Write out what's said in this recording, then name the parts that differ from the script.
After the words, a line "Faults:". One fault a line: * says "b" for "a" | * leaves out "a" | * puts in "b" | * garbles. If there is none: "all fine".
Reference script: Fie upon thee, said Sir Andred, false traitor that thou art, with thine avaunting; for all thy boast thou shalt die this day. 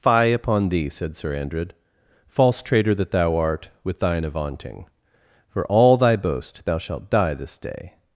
Fie upon thee, said Sir Andred, false traitor that thou art, with thine avaunting; for all thy boast thou shalt die this day.
Faults:
all fine